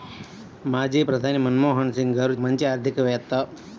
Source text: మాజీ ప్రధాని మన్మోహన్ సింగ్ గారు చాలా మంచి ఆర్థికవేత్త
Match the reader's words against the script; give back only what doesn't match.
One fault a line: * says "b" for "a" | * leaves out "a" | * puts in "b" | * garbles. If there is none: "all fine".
* leaves out "చాలా"